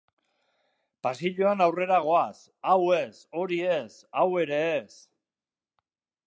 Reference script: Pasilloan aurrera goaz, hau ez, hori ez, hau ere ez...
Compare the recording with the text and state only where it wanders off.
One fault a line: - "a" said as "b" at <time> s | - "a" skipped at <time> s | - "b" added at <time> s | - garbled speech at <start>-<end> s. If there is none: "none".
none